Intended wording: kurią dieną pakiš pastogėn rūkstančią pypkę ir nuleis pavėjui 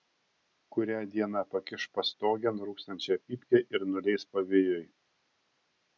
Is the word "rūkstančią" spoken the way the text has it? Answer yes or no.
yes